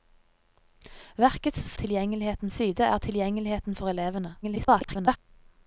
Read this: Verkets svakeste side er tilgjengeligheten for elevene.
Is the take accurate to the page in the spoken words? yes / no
no